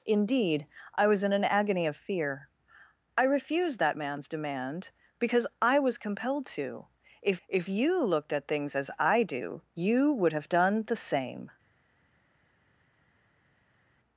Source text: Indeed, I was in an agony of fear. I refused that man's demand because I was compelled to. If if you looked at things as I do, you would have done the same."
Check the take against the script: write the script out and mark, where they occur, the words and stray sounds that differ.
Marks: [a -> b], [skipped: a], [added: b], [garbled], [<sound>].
Indeed, I was in an agony of fear. I refused that man's demand because I was compelled to. If if you looked at things as I do, you would have done the same."